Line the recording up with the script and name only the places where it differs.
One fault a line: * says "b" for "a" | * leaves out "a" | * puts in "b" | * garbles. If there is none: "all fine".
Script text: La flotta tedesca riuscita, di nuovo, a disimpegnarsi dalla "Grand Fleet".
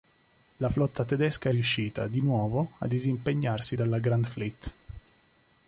all fine